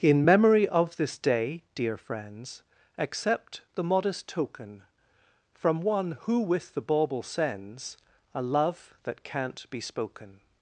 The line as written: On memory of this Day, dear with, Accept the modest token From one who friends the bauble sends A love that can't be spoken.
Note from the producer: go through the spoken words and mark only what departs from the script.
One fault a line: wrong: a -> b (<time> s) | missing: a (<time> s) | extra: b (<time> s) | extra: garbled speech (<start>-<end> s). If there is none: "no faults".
wrong: On -> In (0.0 s)
wrong: with -> friends (2.0 s)
wrong: friends -> with (6.4 s)